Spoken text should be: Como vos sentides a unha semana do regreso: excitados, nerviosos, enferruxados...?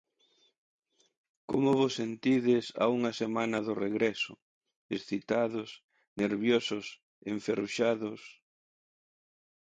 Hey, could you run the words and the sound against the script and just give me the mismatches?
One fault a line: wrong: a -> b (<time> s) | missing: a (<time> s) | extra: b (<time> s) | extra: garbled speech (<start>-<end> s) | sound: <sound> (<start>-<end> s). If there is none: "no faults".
no faults